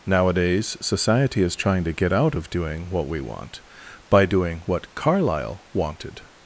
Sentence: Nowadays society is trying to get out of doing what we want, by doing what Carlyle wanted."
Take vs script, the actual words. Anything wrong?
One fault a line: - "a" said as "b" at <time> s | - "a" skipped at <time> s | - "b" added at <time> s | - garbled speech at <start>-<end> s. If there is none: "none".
none